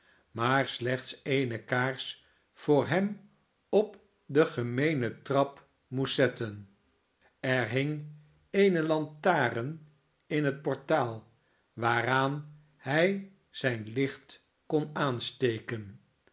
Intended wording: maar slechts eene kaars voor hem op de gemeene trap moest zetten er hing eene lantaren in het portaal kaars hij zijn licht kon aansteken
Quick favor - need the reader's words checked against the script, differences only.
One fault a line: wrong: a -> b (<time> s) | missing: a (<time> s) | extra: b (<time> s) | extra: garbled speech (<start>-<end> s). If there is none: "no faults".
wrong: kaars -> waaraan (11.7 s)